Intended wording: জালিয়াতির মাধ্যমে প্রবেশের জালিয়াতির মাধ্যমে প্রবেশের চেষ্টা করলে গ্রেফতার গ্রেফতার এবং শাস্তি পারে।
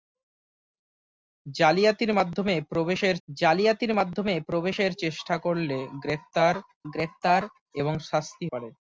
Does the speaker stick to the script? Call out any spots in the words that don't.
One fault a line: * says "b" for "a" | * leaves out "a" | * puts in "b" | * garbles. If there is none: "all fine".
all fine